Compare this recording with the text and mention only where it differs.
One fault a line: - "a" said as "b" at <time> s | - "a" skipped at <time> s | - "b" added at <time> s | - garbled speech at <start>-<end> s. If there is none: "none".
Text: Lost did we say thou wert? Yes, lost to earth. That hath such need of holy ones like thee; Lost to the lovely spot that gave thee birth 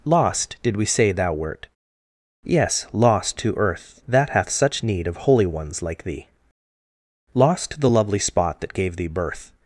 none